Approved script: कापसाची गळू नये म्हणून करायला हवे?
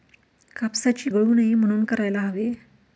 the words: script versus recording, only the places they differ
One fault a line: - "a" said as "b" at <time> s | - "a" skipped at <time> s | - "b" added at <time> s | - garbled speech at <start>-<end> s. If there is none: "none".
none